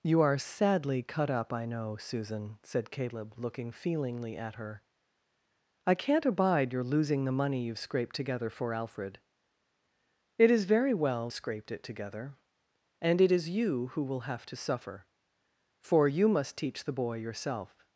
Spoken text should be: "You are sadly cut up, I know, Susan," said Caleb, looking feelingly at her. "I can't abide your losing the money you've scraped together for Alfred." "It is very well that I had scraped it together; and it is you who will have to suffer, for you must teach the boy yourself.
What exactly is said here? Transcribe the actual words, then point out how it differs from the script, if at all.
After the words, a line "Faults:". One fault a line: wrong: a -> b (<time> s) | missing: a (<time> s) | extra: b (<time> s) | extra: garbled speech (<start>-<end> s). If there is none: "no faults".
"You are sadly cut up, I know, Susan," said Caleb, looking feelingly at her. "I can't abide your losing the money you've scraped together for Alfred." "It is very well scraped it together; and it is you who will have to suffer, for you must teach the boy yourself.
Faults:
missing: that I had (11.3 s)